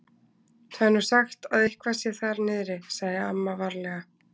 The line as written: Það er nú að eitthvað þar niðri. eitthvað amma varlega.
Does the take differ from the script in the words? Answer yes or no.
yes